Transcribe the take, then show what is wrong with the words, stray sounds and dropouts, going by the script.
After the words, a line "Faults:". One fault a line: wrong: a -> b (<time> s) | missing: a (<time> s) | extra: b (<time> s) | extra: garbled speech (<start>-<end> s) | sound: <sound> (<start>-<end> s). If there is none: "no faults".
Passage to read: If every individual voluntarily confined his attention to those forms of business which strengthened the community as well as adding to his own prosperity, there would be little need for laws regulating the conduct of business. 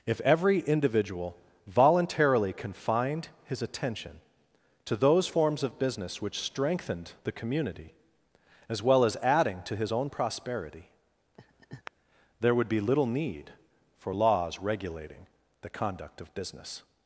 If every individual voluntarily confined his attention to those forms of business which strengthened the community as well as adding to his own prosperity, there would be little need for laws regulating the conduct of business.
Faults:
sound: laugh (11.4-11.9 s)